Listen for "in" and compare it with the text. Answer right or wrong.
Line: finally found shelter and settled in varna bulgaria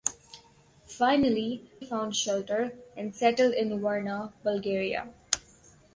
right